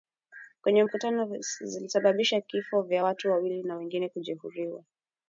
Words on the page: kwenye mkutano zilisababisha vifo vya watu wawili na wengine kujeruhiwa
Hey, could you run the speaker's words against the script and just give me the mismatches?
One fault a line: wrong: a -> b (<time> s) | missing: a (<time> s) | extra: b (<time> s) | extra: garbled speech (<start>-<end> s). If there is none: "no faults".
no faults